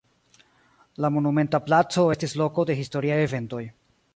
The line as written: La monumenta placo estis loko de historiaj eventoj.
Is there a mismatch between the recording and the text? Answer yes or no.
no